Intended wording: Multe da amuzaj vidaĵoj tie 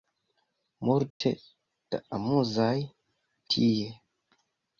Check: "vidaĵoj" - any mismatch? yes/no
yes